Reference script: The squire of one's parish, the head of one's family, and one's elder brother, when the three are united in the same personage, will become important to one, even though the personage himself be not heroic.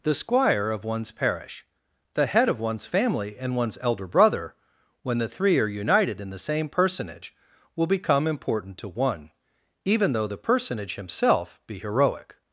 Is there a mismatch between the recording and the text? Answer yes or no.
yes